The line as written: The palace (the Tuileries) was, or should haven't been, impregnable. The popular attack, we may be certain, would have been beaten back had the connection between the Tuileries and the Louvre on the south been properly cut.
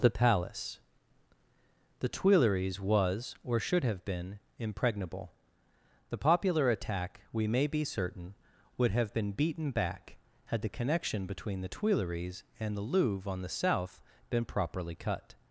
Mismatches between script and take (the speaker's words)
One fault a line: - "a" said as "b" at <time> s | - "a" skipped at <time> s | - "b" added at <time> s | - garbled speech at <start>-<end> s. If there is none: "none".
- "haven't" said as "have" at 3.8 s